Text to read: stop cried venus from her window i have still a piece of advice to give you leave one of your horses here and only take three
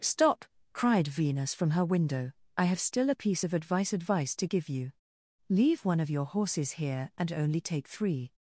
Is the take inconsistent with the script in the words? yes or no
yes